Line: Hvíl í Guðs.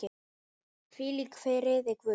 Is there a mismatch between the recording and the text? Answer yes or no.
yes